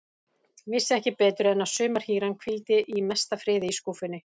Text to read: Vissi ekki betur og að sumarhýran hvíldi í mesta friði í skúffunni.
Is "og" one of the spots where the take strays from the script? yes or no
yes